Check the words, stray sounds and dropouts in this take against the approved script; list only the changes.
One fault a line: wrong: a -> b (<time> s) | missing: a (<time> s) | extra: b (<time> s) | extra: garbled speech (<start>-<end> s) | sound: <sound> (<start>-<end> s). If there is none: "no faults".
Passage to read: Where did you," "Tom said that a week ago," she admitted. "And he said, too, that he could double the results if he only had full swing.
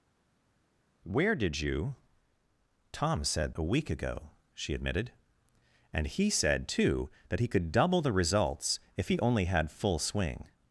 missing: that (3.5 s)